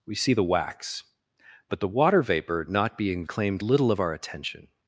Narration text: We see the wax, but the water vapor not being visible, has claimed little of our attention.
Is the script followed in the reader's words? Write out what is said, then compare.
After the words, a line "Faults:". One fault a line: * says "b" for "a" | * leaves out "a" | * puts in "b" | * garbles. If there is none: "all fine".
We see the wax, but the water vapor not being claimed little of our attention.
Faults:
* leaves out "visible has"